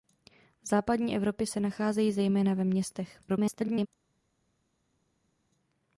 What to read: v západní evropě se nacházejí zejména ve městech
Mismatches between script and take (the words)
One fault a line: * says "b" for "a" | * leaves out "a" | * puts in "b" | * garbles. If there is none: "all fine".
* garbles